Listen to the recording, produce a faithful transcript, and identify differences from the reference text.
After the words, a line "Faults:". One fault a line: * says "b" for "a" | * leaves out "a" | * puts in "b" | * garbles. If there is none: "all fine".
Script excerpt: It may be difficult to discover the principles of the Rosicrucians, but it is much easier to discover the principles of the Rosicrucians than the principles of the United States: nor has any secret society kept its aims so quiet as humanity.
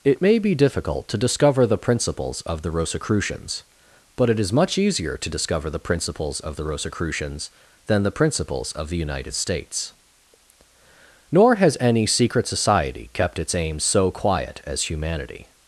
It may be difficult to discover the principles of the Rosicrucians, but it is much easier to discover the principles of the Rosicrucians than the principles of the United States: nor has any secret society kept its aims so quiet as humanity.
Faults:
all fine